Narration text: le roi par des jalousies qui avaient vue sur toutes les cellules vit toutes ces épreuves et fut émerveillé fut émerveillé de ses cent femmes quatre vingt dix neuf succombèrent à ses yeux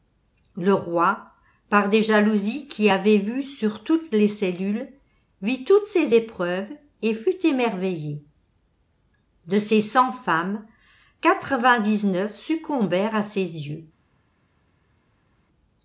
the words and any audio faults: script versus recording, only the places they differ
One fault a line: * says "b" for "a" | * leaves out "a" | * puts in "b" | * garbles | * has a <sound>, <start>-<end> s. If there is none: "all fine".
* leaves out "fut émerveillé"